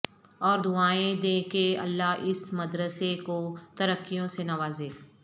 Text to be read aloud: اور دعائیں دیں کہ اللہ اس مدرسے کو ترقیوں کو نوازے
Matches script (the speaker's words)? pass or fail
fail